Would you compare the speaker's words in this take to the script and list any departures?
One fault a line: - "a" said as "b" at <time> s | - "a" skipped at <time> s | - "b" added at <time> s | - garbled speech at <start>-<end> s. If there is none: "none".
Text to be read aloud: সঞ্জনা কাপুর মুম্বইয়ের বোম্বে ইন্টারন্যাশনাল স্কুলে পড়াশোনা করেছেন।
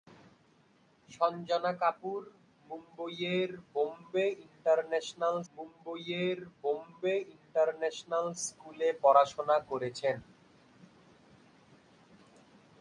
- "মুম্বইয়ের বোম্বে ইন্টারন্যাশনাল" added at 5.5 s